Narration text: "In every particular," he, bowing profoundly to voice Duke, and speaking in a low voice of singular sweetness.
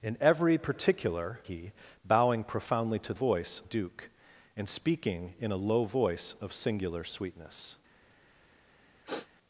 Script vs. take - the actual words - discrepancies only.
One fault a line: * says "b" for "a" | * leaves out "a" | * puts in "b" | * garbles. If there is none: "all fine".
all fine